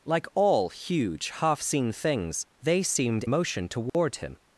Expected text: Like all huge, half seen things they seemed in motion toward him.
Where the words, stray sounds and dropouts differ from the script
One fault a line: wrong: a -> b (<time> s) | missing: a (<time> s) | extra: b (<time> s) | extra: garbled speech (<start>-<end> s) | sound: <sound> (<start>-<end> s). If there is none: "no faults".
missing: in (3.2 s)
sound: dropout (3.9-3.9 s)